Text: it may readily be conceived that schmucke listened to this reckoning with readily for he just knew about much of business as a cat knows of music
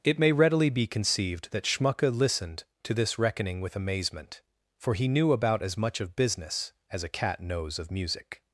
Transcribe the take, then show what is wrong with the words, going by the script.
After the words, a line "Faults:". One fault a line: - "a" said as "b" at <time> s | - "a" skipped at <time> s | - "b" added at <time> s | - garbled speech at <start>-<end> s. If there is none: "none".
it may readily be conceived that schmucke listened to this reckoning with amazement for he knew about as much of business as a cat knows of music
Faults:
- "readily" said as "amazement" at 3.8 s
- "just" skipped at 5.1 s
- "as" added at 5.6 s